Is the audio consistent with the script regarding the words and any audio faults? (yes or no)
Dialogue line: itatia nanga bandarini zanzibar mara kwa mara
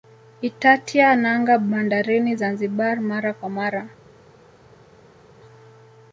yes